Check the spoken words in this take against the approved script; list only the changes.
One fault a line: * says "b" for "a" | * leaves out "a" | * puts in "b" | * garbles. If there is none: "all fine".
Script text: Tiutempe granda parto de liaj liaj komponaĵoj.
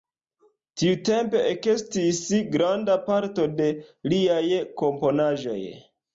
* puts in "ekestis"
* leaves out "liaj"